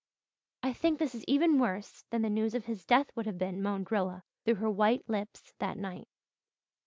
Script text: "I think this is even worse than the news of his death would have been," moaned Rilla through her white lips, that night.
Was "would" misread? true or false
false